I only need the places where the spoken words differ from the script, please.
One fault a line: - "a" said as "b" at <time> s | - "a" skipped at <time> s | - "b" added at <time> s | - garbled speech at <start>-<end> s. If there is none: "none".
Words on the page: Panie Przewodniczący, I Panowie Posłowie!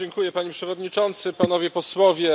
none